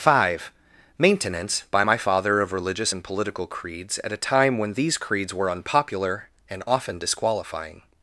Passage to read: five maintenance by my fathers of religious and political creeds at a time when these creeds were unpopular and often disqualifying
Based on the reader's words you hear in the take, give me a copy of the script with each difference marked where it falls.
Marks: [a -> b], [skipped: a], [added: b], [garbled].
five maintenance by my [fathers -> father] of religious and political creeds at a time when these creeds were unpopular and often disqualifying